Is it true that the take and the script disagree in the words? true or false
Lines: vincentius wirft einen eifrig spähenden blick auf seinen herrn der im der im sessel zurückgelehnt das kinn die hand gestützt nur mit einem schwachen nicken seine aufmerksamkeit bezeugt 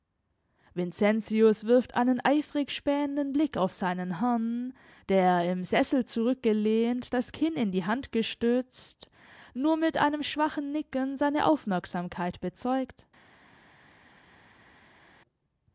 true